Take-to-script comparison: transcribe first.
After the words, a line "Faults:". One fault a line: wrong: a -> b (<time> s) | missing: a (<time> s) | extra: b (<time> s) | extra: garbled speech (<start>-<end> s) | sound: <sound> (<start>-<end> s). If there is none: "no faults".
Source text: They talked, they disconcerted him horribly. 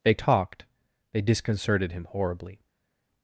They talked, they disconcerted him horribly.
Faults:
no faults